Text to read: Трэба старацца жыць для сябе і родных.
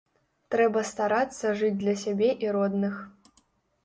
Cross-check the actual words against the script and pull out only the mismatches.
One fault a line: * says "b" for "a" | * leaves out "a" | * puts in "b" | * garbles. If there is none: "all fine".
all fine